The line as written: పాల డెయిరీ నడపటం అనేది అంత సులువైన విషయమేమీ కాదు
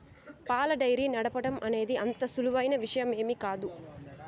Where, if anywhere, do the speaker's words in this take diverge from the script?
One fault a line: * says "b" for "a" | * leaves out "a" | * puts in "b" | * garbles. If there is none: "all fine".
all fine